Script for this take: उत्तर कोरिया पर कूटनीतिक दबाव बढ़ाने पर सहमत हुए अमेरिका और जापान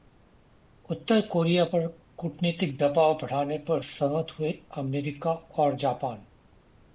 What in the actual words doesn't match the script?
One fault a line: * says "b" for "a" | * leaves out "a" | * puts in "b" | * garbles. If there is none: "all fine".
all fine